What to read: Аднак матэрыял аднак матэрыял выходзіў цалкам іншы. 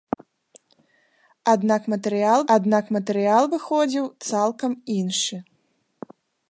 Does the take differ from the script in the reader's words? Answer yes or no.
no